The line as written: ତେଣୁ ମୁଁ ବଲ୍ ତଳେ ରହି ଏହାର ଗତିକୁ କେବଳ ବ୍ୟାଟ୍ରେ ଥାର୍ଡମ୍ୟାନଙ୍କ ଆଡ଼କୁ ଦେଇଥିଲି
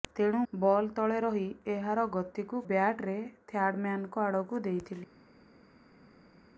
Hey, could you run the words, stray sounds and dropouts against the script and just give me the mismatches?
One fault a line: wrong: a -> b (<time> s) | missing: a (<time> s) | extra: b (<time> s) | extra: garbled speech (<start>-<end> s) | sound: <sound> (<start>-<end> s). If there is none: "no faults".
missing: ମୁଁ (0.4 s)
missing: କେବଳ (2.6 s)